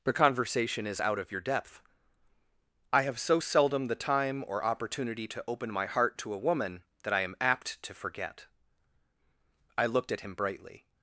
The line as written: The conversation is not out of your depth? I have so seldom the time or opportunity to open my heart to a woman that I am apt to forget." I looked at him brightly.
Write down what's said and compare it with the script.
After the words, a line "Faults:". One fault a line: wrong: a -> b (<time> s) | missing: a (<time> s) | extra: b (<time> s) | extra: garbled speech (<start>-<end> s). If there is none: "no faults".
The conversation is out of your depth? I have so seldom the time or opportunity to open my heart to a woman that I am apt to forget." I looked at him brightly.
Faults:
missing: not (1.0 s)